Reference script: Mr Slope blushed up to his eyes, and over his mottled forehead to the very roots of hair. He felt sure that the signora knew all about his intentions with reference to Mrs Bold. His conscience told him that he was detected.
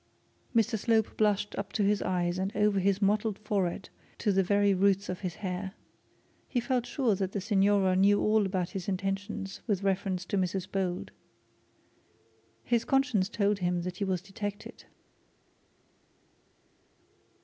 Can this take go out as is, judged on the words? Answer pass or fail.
fail